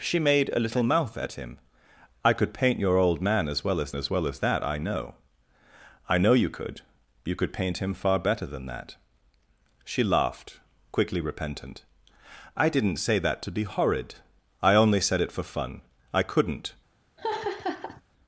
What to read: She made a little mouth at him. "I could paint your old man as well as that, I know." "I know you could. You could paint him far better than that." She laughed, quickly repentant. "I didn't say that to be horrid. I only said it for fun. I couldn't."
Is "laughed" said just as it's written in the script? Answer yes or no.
yes